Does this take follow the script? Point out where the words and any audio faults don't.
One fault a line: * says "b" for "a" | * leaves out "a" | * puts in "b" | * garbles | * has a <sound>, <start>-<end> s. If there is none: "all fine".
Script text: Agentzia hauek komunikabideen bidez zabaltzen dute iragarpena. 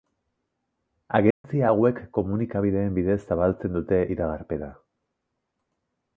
* has a dropout, 1.3-1.4 s